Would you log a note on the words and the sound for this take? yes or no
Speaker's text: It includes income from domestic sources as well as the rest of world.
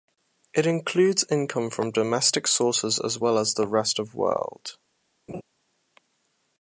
yes